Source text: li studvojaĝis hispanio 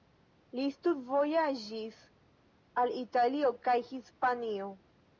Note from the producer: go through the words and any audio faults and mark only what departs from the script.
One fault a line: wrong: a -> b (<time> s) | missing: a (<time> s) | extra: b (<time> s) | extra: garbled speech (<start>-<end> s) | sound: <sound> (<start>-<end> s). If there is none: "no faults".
extra: al italio kaj (2.8 s)